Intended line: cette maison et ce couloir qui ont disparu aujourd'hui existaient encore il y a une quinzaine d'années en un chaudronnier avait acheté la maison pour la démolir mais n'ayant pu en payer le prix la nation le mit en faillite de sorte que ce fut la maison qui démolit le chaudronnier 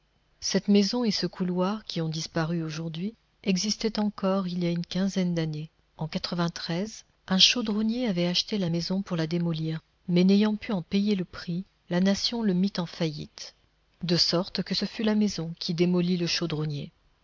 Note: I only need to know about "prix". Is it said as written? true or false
true